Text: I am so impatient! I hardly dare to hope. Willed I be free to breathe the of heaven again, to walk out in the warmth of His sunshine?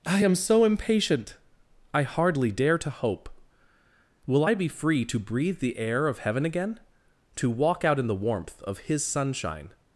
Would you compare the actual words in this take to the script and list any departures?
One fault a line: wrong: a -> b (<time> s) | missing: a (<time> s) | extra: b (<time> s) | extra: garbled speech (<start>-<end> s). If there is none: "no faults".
wrong: Willed -> Will (4.3 s)
extra: air (5.8 s)